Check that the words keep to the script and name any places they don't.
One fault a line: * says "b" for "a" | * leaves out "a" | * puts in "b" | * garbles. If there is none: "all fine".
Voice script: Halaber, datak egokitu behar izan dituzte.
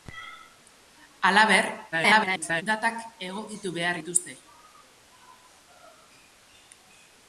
* garbles
* leaves out "izan"